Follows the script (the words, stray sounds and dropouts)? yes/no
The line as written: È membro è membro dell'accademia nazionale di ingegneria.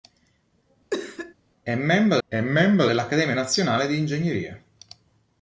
no